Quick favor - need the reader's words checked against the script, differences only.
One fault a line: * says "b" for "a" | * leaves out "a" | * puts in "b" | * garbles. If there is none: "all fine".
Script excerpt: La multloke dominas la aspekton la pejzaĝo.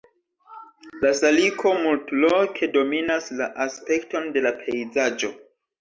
* puts in "saliko"
* puts in "de"